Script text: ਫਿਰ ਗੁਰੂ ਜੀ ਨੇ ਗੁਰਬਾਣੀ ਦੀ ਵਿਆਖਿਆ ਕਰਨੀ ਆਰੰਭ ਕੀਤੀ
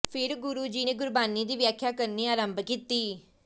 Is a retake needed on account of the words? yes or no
no